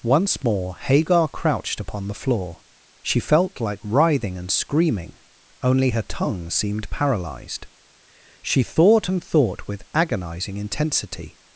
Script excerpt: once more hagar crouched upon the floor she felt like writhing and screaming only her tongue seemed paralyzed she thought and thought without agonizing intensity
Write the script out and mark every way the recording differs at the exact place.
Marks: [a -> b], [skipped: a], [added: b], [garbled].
once more hagar crouched upon the floor she felt like writhing and screaming only her tongue seemed paralyzed she thought and thought [without -> with] agonizing intensity